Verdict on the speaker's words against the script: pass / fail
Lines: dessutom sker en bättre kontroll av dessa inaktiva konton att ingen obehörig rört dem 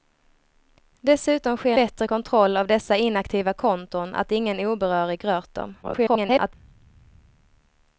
fail